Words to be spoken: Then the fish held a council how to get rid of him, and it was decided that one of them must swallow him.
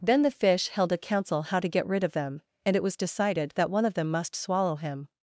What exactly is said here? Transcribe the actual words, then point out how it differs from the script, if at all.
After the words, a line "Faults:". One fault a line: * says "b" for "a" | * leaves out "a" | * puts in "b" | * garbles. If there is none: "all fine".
Then the fish held a council how to get rid of them, and it was decided that one of them must swallow him.
Faults:
* says "them" for "him"